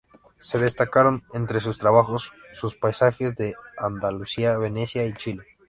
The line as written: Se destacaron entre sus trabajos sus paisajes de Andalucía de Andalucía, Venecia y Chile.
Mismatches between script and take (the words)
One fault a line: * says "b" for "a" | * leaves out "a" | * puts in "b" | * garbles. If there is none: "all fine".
* leaves out "de Andalucía"